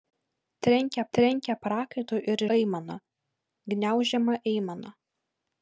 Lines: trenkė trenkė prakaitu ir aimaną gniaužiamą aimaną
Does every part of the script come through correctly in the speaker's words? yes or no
yes